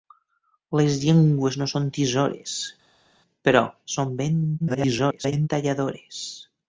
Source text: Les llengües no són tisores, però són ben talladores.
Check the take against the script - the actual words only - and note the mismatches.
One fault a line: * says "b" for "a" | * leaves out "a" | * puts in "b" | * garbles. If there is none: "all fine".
* garbles